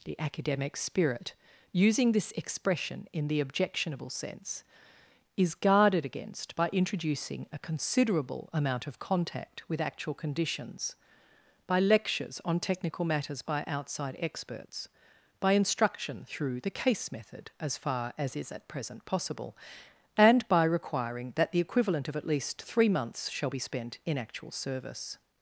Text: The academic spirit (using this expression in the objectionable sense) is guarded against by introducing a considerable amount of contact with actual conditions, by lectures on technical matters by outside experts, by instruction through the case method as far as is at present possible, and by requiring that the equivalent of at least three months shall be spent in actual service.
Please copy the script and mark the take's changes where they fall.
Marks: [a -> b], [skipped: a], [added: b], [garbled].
The academic spirit (using this expression in the objectionable sense) is guarded against by introducing a considerable amount of contact with actual conditions, by lectures on technical matters by outside experts, by instruction through the case method as far as is at present possible, and by requiring that the equivalent of at least three months shall be spent in actual service.